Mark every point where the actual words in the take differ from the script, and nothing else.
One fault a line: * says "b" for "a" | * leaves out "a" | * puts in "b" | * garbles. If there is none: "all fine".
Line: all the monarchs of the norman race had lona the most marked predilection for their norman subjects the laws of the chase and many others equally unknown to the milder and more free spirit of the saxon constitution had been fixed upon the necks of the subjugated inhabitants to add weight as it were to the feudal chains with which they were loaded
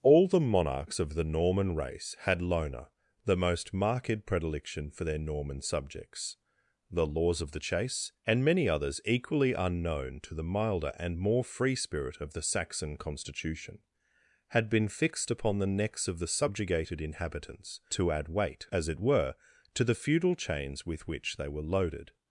all fine